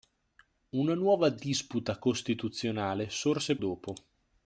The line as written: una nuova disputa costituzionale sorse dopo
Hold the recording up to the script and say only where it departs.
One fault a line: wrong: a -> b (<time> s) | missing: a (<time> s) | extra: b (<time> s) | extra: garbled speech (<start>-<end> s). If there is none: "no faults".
no faults